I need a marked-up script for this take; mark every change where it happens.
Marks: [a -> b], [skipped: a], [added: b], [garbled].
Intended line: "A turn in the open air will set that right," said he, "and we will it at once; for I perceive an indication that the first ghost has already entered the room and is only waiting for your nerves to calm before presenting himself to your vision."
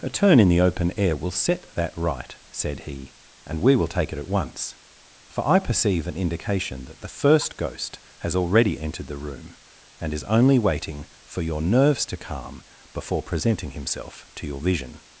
"A turn in the open air will set that right," said he, "and we will [added: take] it at once; for I perceive an indication that the first ghost has already entered the room and is only waiting for your nerves to calm before presenting himself to your vision."